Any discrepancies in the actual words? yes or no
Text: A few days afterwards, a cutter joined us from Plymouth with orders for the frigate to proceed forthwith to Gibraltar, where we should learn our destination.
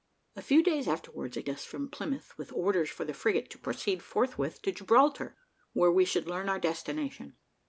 yes